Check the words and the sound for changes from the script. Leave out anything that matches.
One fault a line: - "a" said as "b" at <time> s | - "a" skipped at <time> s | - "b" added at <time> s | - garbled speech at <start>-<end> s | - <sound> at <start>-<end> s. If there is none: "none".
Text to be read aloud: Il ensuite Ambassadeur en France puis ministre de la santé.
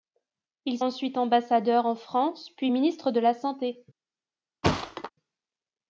- thud at 4.6-5.1 s